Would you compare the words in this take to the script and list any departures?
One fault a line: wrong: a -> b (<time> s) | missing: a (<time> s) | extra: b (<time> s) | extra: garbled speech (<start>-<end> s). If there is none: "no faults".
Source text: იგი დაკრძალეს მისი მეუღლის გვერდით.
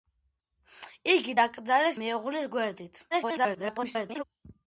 missing: მისი (2.0 s)
extra: garbled speech (3.1-4.2 s)